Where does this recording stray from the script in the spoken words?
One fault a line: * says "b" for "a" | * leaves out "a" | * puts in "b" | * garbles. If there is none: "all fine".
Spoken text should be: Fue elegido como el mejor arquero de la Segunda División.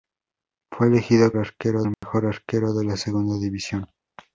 * says "arquero" for "como"